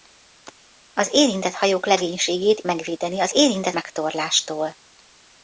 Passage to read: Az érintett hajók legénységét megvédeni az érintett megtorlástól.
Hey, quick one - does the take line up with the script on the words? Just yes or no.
yes